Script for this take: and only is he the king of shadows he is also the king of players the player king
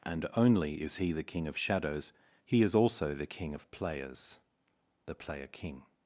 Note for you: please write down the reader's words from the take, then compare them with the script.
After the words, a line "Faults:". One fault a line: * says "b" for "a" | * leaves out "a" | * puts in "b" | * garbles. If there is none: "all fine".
and only is he the king of shadows he is also the king of players the player king
Faults:
all fine